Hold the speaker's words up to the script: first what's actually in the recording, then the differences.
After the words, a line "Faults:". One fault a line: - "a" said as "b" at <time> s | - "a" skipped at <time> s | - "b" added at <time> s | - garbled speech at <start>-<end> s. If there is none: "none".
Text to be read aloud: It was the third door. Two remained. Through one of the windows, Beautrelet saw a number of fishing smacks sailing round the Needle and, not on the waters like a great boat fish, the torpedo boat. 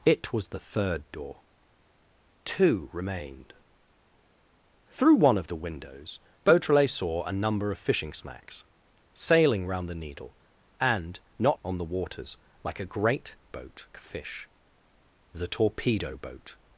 It was the third door. Two remained. Through one of the windows, Beautrelet saw a number of fishing smacks sailing round the Needle and, not on the waters like a great boat fish, the torpedo boat.
Faults:
none